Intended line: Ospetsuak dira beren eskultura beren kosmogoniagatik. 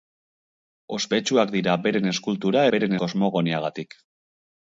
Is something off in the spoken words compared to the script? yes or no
no